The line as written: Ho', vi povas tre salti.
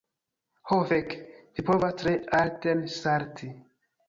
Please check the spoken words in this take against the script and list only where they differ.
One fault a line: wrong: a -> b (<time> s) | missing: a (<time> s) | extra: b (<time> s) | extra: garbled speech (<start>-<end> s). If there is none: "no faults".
extra: fek (0.9 s)
extra: alten (2.4 s)